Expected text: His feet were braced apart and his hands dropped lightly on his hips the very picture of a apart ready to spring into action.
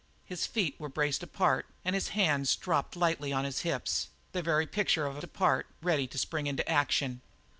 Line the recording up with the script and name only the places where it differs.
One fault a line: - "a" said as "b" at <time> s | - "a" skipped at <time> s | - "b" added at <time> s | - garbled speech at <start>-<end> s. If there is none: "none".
none